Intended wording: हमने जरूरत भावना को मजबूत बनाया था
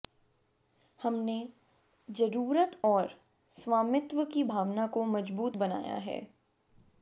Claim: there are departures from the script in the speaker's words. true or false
true